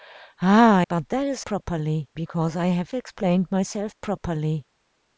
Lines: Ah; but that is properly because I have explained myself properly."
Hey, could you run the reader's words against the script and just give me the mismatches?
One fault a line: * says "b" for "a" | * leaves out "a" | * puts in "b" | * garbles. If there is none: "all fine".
all fine